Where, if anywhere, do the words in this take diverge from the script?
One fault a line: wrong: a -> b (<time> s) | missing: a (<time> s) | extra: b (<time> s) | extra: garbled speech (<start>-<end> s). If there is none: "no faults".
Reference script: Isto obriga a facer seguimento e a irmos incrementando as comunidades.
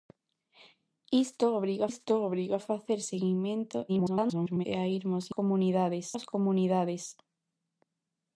extra: isto obriga (1.9 s)
extra: garbled speech (3.9-4.7 s)
wrong: incrementando -> comunidades (5.4 s)